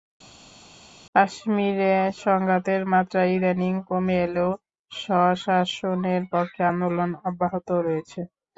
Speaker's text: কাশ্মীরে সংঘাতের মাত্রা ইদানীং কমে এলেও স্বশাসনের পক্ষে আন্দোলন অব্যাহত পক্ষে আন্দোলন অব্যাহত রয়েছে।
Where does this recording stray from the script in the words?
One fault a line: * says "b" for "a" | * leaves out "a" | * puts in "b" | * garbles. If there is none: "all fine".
* leaves out "পক্ষে আন্দোলন অব্যাহত"